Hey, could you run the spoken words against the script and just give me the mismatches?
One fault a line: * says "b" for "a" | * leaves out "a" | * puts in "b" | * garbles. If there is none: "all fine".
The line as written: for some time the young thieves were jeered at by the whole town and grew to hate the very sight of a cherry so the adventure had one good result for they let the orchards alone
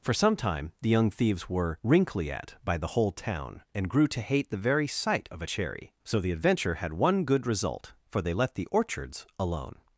* says "wrinkly" for "jeered"